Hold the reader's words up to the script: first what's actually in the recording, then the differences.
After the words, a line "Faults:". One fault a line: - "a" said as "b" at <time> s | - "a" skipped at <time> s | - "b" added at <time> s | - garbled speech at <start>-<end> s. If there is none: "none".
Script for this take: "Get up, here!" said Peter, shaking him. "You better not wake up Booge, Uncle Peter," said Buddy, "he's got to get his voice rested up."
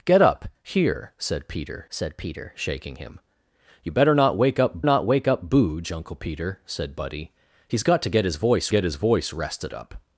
"Get up, here!" said Peter said Peter, shaking him. "You better not wake up not wake up Booge, Uncle Peter," said Buddy, "he's got to get his voice get his voice rested up."
Faults:
- "said Peter" added at 1.9 s
- "not wake up" added at 4.8 s
- "get his voice" added at 8.7 s